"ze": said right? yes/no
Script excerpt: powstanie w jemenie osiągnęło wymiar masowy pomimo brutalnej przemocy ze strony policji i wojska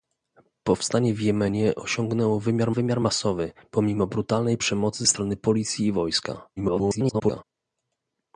no